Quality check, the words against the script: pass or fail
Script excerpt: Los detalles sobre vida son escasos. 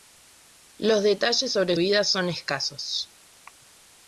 pass